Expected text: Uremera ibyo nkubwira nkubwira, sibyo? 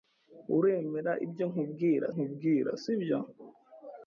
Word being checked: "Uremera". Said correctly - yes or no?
yes